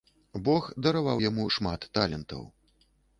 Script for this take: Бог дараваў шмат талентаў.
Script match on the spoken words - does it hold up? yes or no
no